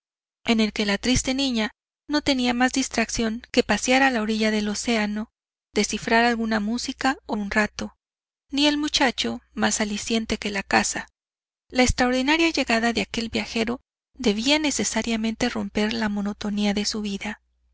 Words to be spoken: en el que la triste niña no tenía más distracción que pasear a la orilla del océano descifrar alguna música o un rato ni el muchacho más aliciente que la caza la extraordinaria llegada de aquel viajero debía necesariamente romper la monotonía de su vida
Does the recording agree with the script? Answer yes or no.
yes